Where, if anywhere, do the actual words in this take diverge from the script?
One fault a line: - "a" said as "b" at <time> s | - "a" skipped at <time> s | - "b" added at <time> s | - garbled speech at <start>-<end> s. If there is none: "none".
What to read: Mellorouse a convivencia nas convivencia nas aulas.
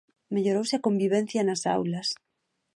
- "convivencia nas" skipped at 1.6 s